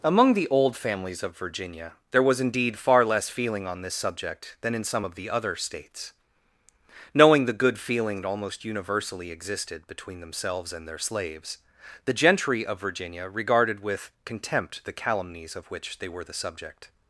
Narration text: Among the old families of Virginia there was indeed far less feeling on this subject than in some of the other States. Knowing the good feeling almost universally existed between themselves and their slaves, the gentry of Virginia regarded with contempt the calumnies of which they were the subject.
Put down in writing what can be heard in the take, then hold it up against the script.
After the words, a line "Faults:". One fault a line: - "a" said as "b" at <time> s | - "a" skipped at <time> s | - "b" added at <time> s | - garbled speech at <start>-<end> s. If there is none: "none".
Among the old families of Virginia there was indeed far less feeling on this subject than in some of the other States. Knowing the good feeling almost universally existed between themselves and their slaves, the gentry of Virginia regarded with contempt the calumnies of which they were the subject.
Faults:
none